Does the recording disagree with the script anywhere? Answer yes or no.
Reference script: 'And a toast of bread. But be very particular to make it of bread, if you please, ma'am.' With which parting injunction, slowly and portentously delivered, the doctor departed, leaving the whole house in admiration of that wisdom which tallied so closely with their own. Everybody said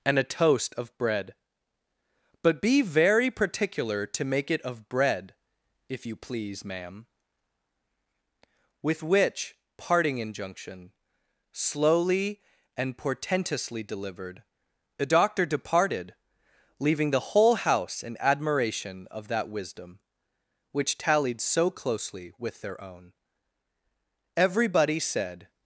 no